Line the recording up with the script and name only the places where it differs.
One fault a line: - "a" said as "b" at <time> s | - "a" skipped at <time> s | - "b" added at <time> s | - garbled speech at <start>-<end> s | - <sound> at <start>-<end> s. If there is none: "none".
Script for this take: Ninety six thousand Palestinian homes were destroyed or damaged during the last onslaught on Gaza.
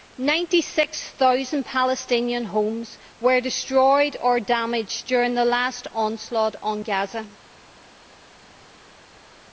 none